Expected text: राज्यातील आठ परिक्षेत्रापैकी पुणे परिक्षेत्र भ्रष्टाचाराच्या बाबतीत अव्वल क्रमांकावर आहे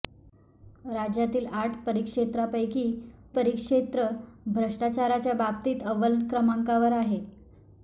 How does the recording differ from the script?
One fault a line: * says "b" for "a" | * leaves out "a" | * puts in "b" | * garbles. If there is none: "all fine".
* leaves out "पुणे"